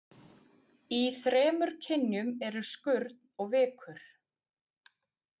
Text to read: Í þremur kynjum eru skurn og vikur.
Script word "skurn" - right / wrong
right